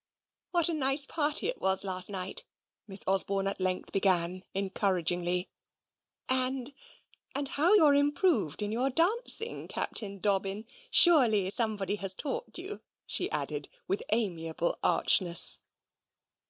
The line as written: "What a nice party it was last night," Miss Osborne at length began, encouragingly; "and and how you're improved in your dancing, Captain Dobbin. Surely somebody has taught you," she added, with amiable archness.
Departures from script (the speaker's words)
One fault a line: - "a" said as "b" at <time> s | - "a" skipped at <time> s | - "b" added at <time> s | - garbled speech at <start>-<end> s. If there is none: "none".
none